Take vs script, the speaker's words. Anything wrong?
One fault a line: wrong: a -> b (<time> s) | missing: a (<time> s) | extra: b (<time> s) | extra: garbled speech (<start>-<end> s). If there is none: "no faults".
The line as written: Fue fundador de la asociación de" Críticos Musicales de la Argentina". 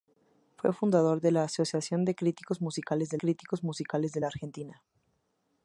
extra: Críticos Musicales de (3.2 s)